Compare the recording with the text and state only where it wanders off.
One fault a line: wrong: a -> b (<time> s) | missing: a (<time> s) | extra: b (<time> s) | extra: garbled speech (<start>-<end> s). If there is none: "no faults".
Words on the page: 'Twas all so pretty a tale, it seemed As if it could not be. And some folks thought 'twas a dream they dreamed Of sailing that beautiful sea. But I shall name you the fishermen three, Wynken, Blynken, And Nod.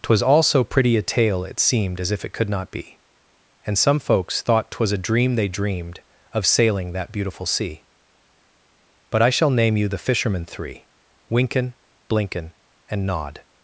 no faults